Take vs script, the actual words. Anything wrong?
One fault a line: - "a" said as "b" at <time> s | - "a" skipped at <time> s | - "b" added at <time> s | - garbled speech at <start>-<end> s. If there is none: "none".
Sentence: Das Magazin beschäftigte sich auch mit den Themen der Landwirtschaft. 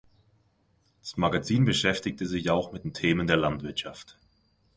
none